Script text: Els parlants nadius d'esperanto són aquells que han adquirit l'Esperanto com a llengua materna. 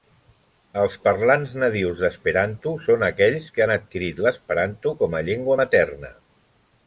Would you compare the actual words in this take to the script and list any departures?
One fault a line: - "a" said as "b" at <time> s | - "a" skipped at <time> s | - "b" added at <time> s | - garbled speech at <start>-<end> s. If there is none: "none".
none